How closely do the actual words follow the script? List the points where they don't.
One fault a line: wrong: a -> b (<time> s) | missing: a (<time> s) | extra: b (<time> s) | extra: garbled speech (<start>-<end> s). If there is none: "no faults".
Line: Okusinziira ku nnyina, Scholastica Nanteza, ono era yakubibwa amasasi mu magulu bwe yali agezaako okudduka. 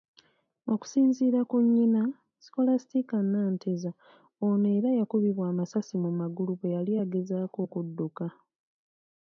no faults